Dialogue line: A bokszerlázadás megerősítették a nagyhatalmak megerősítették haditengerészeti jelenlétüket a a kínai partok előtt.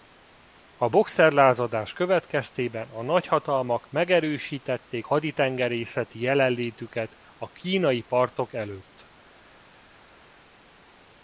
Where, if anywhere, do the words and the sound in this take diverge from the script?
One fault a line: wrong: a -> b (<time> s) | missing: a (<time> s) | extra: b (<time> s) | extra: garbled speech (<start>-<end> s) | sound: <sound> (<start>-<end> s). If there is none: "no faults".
wrong: megerősítették -> következtében (1.9 s)
missing: a (7.5 s)